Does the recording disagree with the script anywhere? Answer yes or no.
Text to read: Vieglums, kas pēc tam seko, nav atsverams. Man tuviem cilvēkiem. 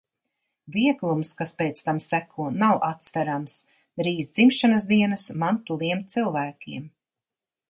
yes